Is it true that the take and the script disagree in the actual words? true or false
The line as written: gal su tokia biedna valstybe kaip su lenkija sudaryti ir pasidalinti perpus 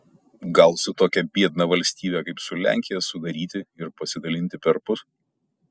false